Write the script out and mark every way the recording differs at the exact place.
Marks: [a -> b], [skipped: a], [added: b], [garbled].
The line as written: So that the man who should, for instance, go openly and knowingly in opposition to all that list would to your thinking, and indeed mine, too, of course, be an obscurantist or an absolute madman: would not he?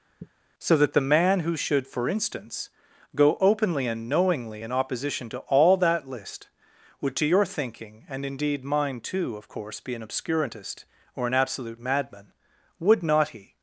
So that the man who should, for instance, go openly and knowingly in opposition to all that list would to your thinking, and indeed mine, too, of course, be an obscurantist or an absolute madman: would not he?